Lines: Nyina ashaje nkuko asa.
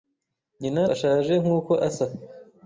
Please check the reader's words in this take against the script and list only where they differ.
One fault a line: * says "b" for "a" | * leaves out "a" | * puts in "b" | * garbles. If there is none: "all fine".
all fine